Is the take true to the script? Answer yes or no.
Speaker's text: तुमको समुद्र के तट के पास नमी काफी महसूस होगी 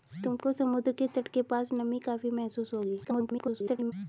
no